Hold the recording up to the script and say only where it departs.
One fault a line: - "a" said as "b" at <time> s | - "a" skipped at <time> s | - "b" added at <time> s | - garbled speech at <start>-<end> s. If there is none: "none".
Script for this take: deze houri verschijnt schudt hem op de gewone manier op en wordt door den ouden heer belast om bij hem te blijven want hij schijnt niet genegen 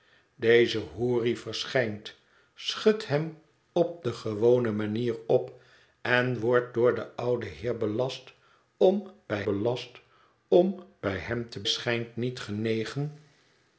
- "hem te blijven want hij" said as "belast om bij hem te" at 9.4 s